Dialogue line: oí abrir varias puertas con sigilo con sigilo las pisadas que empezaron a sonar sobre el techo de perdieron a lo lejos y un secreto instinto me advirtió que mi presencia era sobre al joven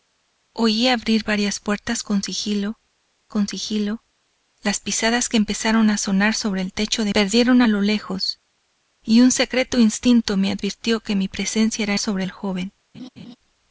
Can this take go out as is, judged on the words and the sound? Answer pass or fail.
fail